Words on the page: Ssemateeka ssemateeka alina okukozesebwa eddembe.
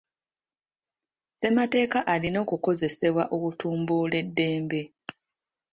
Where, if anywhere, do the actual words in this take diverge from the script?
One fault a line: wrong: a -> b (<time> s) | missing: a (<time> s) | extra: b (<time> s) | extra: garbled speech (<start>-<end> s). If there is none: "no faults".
missing: ssemateeka (2.0 s)
extra: okutumbula (3.4 s)